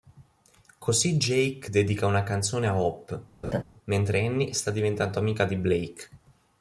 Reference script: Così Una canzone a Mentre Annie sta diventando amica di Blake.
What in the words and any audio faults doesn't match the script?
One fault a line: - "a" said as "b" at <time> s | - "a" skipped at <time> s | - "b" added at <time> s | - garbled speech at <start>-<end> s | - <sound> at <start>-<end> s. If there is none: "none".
- "Jake dedica" added at 1.2 s
- "Hope" added at 2.8 s
- laugh at 3.4-3.6 s